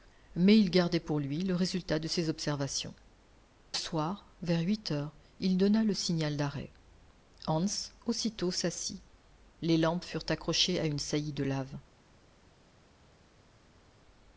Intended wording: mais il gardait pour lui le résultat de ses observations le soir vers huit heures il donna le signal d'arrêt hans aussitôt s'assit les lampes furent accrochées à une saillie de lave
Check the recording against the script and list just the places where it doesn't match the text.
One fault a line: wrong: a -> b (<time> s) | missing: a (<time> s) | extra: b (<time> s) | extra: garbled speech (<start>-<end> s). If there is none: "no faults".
missing: le (3.0 s)